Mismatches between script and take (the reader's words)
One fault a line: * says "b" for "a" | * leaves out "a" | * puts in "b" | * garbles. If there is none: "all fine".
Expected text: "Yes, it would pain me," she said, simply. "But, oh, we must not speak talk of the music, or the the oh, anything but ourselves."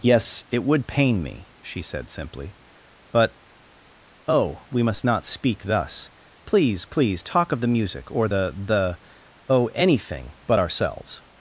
* puts in "thus Please please"